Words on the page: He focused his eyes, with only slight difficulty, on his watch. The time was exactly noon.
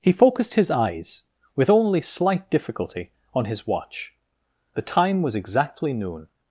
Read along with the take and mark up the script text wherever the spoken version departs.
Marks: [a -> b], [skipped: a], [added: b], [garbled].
He focused his eyes, with only slight difficulty, on his watch. The time was exactly noon.